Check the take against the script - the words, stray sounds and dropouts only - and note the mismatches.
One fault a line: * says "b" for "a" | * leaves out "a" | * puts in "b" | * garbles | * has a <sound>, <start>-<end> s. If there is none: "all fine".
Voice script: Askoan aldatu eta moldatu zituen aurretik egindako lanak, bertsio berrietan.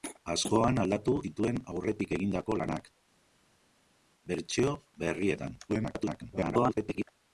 * leaves out "eta moldatu"
* garbles